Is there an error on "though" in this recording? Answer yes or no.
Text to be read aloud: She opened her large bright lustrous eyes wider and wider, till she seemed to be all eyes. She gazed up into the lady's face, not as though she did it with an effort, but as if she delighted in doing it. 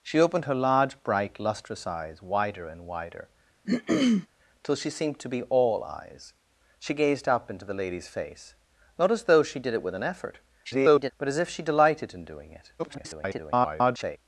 no